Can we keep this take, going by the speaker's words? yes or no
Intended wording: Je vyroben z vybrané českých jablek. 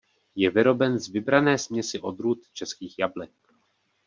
no